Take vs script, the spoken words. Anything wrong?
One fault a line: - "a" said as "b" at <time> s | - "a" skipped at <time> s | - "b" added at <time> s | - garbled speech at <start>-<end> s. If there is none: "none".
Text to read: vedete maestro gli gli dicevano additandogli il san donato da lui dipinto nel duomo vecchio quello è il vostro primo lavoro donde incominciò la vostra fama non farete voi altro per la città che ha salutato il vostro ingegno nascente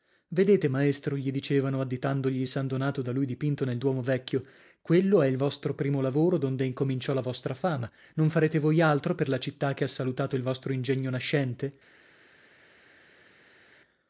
- "gli" skipped at 1.3 s